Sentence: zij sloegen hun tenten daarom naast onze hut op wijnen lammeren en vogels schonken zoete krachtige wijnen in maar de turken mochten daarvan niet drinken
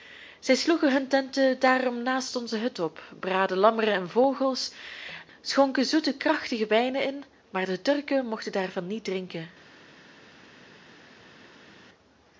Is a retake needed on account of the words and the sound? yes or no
yes